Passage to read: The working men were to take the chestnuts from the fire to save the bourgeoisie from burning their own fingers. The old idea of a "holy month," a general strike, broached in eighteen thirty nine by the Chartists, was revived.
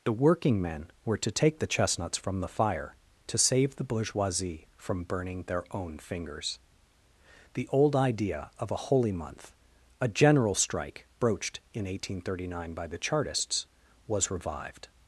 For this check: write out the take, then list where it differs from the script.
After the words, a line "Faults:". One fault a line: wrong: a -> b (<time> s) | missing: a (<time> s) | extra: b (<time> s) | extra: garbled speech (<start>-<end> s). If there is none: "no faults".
The working men were to take the chestnuts from the fire to save the bourgeoisie from burning their own fingers. The old idea of a "holy month," a general strike, broached in eighteen thirty nine by the Chartists, was revived.
Faults:
no faults